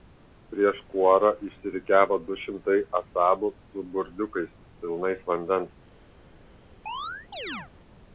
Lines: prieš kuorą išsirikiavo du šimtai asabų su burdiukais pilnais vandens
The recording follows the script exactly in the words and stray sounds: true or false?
false